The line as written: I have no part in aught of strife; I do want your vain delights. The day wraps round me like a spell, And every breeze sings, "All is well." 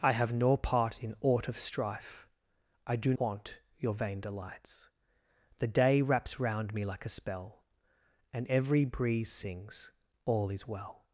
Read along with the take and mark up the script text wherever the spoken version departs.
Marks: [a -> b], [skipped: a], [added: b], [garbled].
I have no part in aught of strife; I do want your vain delights. The day wraps round me like a spell, And every breeze sings, "All is well."